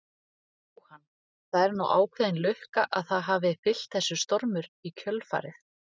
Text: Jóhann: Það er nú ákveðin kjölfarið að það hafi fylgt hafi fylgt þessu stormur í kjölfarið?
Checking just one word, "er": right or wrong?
right